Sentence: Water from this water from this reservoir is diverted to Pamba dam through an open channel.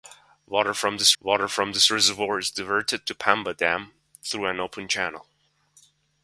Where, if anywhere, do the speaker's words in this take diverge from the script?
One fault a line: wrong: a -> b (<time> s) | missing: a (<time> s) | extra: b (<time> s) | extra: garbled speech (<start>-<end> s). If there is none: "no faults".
no faults